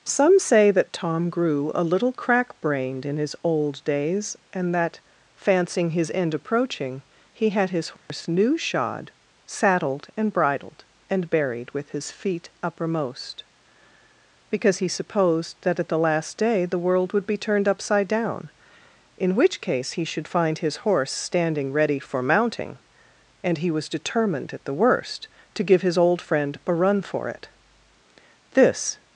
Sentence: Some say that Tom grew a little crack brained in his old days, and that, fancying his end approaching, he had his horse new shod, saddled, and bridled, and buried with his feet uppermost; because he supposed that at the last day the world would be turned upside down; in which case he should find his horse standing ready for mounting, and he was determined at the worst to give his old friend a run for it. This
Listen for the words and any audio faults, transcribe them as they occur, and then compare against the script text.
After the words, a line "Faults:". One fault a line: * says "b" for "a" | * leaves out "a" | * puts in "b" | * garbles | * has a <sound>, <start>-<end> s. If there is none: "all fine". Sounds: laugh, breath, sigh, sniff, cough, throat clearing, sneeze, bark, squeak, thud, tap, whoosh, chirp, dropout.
Some say that Tom grew a little crack brained in his old days, and that, fancying his end approaching, he had his horse new shod, saddled, and bridled, and buried with his feet uppermost; because he supposed that at the last day the world would be turned upside down; in which case he should find his horse standing ready for mounting, and he was determined at the worst to give his old friend a run for it. This
Faults:
* has a dropout, 8.0-8.1 s